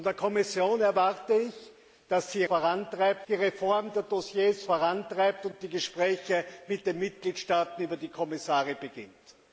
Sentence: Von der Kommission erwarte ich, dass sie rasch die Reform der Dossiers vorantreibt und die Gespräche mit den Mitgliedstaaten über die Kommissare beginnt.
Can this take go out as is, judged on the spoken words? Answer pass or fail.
fail